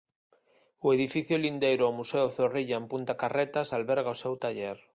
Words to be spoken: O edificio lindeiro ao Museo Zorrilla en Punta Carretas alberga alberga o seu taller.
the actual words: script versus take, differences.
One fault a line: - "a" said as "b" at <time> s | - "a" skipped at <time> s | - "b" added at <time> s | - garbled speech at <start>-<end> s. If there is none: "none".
- "alberga" skipped at 4.2 s